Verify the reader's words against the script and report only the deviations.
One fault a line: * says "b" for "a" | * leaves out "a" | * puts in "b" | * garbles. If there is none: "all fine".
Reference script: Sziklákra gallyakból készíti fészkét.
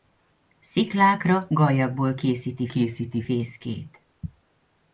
* puts in "készíti"